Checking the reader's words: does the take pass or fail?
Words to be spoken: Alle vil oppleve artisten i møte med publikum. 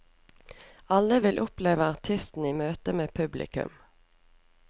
pass